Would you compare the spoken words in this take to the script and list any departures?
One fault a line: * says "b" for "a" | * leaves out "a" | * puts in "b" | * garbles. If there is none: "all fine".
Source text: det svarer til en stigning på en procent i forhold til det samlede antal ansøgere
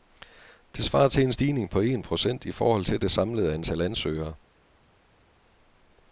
all fine